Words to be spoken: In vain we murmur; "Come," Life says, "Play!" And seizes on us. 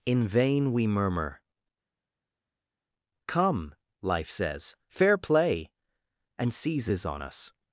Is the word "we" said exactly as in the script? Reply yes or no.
yes